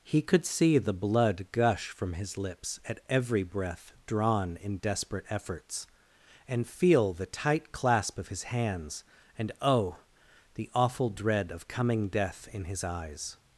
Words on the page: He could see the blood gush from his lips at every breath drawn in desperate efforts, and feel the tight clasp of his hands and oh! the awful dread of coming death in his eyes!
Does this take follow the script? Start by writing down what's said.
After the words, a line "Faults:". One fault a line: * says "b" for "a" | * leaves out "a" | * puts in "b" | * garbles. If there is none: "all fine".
He could see the blood gush from his lips at every breath drawn in desperate efforts, and feel the tight clasp of his hands and oh! the awful dread of coming death in his eyes!
Faults:
all fine